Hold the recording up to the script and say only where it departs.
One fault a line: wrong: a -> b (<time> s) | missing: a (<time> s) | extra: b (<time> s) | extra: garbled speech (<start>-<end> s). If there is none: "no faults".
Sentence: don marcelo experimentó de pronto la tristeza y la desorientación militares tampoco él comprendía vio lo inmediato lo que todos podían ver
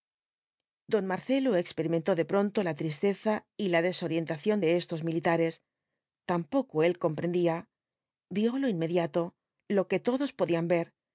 extra: de estos (4.6 s)